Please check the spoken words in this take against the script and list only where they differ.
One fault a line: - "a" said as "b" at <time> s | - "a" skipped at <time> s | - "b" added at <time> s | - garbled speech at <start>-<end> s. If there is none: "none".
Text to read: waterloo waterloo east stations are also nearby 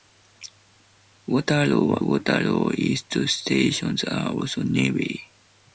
none